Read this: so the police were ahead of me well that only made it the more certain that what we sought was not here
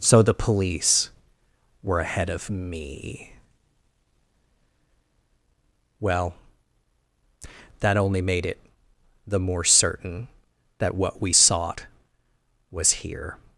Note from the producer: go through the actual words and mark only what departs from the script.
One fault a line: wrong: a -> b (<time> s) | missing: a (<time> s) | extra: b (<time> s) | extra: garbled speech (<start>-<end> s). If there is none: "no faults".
missing: not (12.9 s)